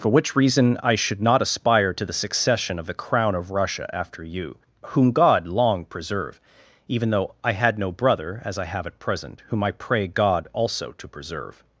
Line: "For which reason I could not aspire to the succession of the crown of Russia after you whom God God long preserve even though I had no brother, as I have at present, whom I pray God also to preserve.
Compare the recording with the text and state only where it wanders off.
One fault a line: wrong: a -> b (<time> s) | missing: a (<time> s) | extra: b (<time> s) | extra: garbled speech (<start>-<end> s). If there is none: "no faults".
wrong: could -> should (0.9 s)
missing: God (5.5 s)